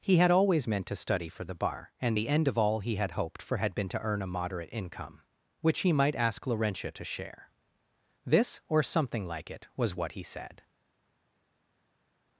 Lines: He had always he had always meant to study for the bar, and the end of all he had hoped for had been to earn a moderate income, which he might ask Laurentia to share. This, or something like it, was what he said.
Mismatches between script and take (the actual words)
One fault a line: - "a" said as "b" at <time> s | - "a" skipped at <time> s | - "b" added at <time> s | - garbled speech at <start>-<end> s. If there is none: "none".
- "he had always" skipped at 0.7 s